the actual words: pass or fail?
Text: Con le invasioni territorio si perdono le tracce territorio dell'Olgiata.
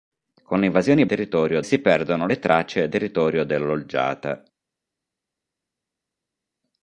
pass